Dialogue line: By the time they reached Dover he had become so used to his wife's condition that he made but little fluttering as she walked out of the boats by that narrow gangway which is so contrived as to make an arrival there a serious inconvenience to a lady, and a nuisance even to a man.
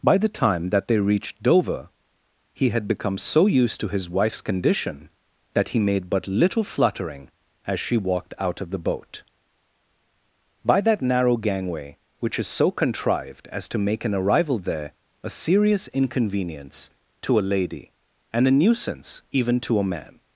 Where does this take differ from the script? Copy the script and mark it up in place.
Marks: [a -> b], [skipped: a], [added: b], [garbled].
By the time [added: that] they reached Dover he had become so used to his wife's condition that he made but little fluttering as she walked out of the [boats -> boat] by that narrow gangway which is so contrived as to make an arrival there a serious inconvenience to a lady, and a nuisance even to a man.